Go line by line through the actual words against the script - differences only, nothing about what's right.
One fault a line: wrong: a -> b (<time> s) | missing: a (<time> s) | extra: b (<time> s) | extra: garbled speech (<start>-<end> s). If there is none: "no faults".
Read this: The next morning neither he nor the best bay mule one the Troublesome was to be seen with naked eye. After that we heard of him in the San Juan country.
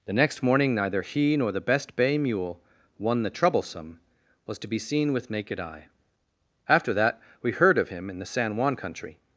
no faults